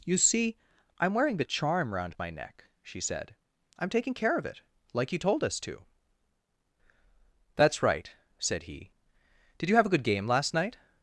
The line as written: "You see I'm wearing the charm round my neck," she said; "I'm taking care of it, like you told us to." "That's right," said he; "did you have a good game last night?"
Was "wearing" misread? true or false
false